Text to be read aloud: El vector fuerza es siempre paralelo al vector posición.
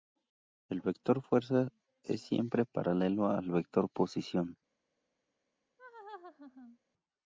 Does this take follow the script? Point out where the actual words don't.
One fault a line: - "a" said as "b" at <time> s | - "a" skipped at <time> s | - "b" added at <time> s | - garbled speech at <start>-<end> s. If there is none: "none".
none